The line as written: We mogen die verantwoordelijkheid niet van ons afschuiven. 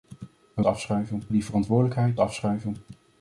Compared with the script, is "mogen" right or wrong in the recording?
wrong